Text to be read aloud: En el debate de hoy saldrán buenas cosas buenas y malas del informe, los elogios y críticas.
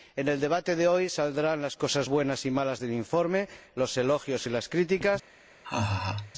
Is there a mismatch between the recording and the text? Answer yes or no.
yes